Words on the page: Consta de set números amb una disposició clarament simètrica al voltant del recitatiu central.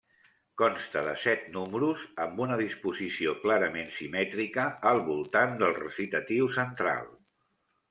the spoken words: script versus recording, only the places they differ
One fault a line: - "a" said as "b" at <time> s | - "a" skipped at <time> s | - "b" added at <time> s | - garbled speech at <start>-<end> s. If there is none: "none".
none